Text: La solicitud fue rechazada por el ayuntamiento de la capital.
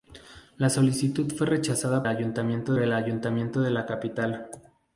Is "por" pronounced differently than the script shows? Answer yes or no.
yes